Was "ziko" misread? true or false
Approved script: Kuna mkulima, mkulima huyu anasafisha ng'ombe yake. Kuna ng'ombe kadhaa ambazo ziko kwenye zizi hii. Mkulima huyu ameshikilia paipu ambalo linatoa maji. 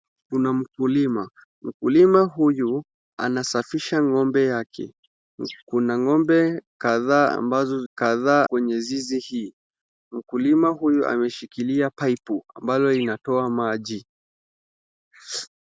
true